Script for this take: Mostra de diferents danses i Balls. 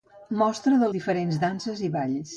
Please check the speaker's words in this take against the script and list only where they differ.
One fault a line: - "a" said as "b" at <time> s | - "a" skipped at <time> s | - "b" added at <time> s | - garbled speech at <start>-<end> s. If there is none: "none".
none